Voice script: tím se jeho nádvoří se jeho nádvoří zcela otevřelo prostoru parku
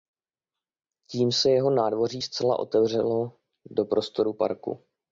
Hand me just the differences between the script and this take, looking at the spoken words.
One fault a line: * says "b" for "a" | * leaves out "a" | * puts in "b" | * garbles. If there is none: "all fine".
* leaves out "se jeho nádvoří"
* puts in "do"